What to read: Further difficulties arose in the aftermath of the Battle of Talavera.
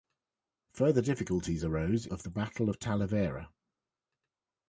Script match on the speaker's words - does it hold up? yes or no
no